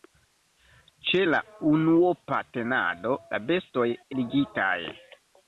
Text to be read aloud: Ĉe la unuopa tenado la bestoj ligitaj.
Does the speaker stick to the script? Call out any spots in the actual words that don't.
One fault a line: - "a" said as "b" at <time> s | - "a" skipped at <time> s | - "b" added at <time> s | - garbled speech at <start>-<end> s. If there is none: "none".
none